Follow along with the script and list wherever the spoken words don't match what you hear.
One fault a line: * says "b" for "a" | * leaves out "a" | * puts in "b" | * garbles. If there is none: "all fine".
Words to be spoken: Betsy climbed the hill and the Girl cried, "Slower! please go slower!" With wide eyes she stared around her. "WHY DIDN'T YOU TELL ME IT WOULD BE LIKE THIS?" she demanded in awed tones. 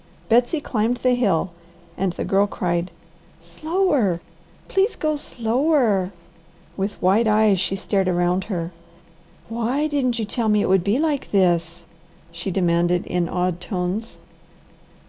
all fine